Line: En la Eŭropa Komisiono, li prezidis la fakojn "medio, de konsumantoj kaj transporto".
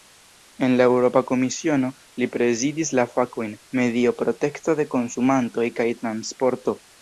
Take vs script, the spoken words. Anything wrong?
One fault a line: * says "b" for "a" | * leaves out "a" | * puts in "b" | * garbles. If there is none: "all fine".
* puts in "protekto"